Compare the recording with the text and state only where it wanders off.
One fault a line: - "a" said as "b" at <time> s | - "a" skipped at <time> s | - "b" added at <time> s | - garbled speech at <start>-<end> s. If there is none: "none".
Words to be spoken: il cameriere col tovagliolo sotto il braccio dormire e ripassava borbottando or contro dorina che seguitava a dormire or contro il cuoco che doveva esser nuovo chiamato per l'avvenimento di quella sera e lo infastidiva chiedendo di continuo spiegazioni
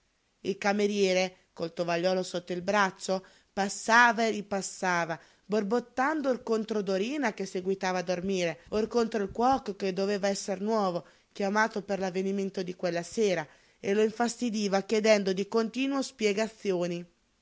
- "dormire" said as "passava" at 3.5 s